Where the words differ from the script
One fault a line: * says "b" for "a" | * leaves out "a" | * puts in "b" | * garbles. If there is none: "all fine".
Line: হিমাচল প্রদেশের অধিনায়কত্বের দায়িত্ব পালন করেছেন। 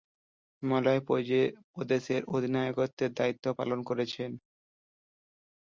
all fine